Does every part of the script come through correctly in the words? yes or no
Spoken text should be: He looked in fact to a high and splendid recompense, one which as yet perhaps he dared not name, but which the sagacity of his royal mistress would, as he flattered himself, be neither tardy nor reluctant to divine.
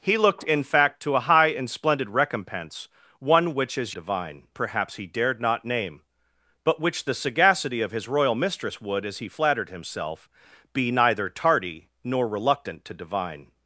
no